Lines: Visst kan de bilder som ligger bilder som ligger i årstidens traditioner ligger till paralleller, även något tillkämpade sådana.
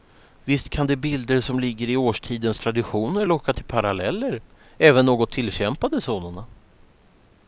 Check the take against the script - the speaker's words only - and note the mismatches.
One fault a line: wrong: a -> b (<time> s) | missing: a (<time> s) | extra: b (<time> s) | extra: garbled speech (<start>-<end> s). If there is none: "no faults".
missing: bilder som ligger (1.9 s)
wrong: ligger -> locka (3.2 s)